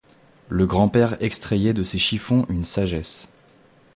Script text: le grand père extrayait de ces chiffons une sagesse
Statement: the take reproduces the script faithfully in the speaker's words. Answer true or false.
true